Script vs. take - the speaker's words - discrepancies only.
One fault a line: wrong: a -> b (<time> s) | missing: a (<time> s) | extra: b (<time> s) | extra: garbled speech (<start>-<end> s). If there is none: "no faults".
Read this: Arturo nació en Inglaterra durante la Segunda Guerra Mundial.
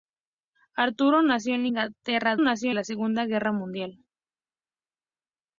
wrong: durante -> nació (2.4 s)